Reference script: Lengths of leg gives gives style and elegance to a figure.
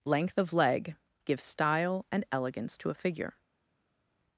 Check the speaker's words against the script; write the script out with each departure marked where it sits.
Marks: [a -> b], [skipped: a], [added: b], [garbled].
[Lengths -> Length] of leg gives [skipped: gives] style and elegance to a figure.